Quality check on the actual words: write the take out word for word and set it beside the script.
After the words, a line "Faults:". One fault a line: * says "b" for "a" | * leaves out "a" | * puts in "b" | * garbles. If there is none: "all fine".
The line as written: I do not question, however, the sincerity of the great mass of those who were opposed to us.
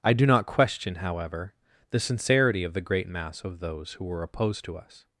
I do not question, however, the sincerity of the great mass of those who were opposed to us.
Faults:
all fine